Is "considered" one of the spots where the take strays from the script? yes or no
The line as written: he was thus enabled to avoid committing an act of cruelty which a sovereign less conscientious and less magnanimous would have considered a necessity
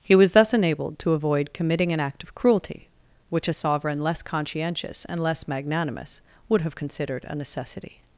no